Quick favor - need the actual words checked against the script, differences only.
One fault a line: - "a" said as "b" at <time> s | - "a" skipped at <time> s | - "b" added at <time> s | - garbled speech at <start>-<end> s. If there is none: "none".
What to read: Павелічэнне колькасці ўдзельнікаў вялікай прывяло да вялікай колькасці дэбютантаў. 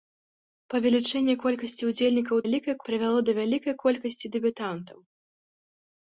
none